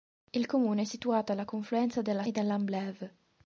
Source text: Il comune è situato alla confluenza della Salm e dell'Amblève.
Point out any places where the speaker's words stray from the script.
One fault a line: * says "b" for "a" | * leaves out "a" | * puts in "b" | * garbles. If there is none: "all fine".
* leaves out "Salm"